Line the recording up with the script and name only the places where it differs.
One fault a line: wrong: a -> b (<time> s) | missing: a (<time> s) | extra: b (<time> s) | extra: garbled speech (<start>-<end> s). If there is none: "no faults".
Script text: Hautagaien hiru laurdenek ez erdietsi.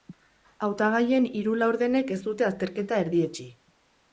extra: dute azterketa (2.3 s)